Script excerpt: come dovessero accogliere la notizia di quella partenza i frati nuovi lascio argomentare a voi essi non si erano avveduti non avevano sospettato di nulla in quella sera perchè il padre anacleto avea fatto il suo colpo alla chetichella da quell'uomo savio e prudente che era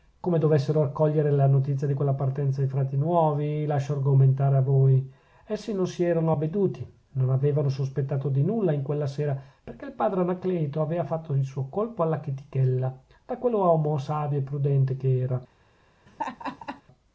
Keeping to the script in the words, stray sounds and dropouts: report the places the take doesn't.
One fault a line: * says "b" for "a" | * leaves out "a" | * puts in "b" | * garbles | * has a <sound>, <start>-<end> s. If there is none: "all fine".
* has a laugh, 16.1-16.8 s